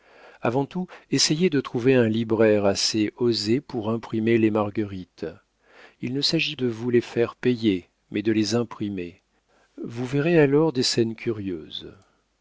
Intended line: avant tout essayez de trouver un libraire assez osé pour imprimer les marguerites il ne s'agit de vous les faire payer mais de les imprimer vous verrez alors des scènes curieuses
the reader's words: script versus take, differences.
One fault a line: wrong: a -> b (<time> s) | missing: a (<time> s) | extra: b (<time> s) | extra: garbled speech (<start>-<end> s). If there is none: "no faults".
no faults